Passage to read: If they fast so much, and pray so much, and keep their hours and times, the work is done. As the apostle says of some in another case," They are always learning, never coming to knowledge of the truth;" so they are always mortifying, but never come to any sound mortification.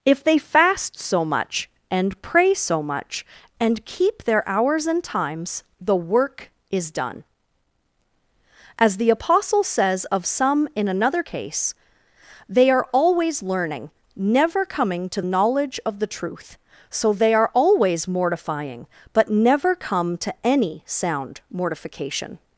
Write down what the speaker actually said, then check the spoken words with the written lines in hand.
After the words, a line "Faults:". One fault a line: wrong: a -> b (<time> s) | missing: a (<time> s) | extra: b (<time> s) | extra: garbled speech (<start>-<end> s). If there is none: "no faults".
If they fast so much, and pray so much, and keep their hours and times, the work is done. As the apostle says of some in another case," They are always learning, never coming to knowledge of the truth;" so they are always mortifying, but never come to any sound mortification.
Faults:
no faults